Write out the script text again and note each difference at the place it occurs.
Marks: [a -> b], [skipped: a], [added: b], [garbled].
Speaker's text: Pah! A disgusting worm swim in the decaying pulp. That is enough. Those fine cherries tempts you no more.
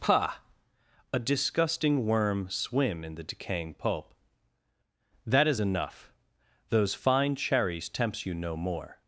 Pah! A disgusting worm swim in the decaying pulp. That is enough. Those fine cherries tempts you no more.